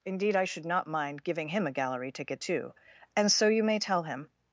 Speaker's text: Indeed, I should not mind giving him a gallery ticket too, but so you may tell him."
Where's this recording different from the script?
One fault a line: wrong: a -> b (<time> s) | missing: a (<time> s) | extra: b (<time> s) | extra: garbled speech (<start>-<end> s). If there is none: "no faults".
wrong: but -> and (3.1 s)